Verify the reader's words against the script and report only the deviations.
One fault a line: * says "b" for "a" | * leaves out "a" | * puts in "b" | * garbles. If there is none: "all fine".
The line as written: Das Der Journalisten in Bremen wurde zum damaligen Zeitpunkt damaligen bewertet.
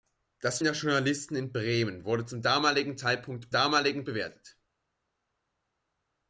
all fine